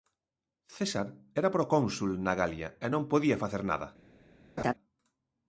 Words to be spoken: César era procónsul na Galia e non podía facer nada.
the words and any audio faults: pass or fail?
fail